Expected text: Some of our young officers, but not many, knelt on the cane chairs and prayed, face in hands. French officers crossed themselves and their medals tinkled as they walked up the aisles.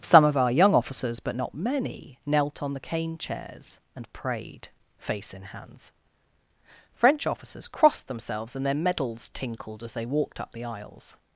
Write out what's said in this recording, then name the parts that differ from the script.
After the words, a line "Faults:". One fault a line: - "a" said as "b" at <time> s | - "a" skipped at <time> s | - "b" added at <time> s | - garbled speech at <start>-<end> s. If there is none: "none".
Some of our young officers, but not many, knelt on the cane chairs and prayed, face in hands. French officers crossed themselves and their medals tinkled as they walked up the aisles.
Faults:
none